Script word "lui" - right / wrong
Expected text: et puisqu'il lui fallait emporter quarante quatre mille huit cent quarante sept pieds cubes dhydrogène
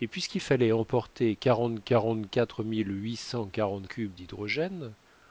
wrong